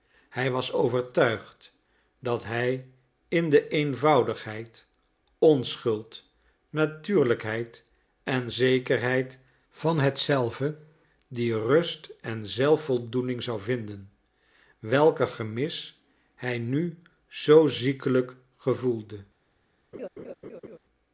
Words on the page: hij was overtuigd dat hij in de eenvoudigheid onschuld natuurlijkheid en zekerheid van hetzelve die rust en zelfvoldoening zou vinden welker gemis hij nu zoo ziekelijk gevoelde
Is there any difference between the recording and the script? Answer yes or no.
no